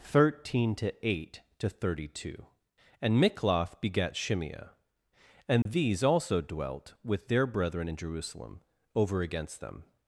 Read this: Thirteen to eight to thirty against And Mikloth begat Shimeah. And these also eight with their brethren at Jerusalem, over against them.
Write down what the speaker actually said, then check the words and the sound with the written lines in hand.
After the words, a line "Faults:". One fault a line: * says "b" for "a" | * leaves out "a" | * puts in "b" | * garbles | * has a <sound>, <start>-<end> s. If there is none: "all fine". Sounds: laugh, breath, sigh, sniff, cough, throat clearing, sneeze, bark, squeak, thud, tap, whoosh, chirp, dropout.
Thirteen to eight to thirty two And Mikloth begat Shimeah. And these also dwelt with their brethren in Jerusalem, over against them.
Faults:
* says "two" for "against"
* has a dropout, 5.6-5.7 s
* says "dwelt" for "eight"
* says "in" for "at"